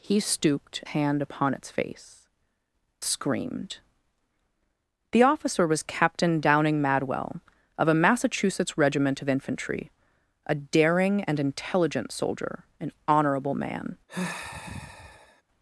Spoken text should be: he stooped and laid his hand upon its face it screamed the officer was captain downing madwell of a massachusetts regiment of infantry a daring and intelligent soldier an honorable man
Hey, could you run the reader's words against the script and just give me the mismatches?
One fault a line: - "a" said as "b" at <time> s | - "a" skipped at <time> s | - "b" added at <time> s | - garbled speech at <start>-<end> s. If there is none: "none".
- "and laid his" skipped at 0.8 s
- "it" skipped at 2.3 s